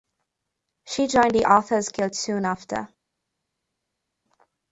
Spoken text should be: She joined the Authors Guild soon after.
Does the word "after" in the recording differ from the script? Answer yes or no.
no